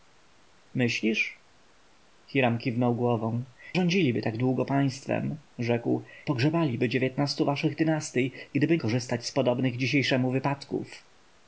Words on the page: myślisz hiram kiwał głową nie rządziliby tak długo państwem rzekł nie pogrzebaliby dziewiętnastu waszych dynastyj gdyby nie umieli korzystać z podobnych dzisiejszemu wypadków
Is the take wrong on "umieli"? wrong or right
wrong